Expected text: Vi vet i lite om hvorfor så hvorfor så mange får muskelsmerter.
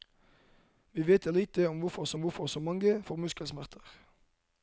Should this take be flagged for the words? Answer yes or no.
no